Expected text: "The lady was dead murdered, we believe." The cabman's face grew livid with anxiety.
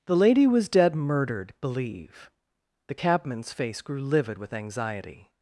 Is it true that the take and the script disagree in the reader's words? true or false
true